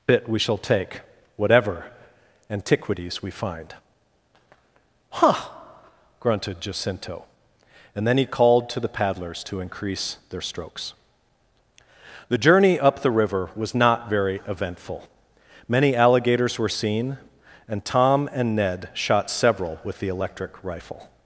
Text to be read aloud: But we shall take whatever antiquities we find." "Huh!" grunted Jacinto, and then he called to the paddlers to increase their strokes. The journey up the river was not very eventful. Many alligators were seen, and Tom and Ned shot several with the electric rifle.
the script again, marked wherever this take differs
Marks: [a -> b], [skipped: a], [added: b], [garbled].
[But -> Bit] we shall take whatever antiquities we find." "Huh!" grunted Jacinto, and then he called to the paddlers to increase their strokes. The journey up the river was not very eventful. Many alligators were seen, and Tom and Ned shot several with the electric rifle.